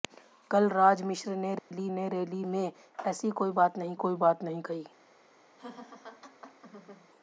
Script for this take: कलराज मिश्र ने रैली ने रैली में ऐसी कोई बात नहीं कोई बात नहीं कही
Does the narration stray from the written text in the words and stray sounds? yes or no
yes